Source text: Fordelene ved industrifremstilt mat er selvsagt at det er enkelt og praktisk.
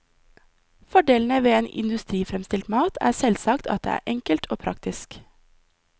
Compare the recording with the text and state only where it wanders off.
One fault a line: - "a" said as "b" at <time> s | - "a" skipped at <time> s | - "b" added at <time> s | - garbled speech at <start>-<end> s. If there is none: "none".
none